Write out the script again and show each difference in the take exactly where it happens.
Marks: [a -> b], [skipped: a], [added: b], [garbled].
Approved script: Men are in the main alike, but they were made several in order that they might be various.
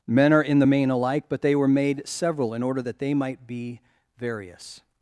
Men are in the main alike, but they were made several in order that they might be various.